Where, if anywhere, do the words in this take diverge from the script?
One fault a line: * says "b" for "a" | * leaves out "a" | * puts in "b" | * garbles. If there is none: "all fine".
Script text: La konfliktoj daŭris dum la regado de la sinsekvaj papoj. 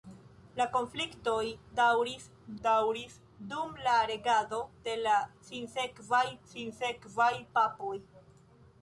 * puts in "daŭris"
* puts in "sinsekvaj"